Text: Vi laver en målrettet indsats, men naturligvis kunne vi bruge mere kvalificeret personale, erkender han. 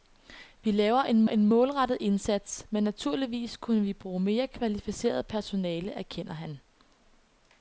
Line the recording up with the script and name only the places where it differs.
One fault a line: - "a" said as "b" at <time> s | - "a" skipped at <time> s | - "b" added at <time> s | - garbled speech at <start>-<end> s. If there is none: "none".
- "en" added at 1.3 s